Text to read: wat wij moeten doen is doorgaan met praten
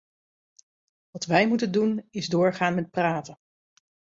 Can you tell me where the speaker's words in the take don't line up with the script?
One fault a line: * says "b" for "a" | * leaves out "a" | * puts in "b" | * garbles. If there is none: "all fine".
all fine